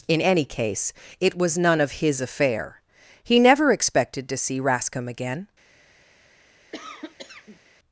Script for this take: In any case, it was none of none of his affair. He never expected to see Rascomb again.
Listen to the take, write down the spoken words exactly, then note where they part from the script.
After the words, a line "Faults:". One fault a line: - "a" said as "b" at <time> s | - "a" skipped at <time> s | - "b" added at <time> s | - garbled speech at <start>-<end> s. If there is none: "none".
In any case, it was none of his affair. He never expected to see Rascomb again.
Faults:
- "none of" skipped at 2.0 s